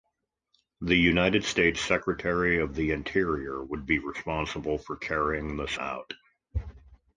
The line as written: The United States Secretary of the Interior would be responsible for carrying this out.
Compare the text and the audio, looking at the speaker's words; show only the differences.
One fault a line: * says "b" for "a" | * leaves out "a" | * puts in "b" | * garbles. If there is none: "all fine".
all fine